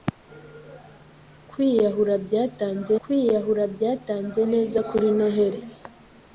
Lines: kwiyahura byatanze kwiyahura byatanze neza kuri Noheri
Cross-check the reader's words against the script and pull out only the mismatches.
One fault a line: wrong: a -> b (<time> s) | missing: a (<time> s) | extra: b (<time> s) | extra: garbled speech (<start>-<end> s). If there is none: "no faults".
no faults